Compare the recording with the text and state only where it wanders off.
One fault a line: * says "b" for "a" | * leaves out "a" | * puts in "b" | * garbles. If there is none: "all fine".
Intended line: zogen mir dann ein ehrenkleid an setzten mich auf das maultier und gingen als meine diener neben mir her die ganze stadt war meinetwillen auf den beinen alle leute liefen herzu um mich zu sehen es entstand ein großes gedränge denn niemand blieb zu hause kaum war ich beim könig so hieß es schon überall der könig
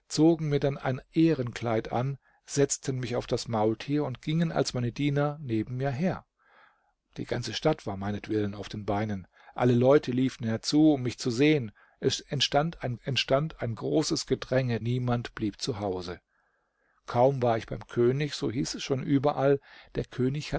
* puts in "entstand ein"
* leaves out "denn"